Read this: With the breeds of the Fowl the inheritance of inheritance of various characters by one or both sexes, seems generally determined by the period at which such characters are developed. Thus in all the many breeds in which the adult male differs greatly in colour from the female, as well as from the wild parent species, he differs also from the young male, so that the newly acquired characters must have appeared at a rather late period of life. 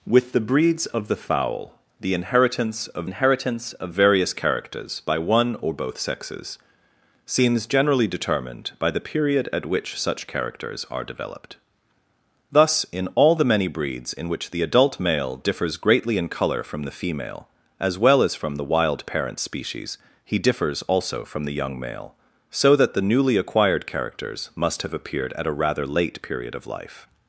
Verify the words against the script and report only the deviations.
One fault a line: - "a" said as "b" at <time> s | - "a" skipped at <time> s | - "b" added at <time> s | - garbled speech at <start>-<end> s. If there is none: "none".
none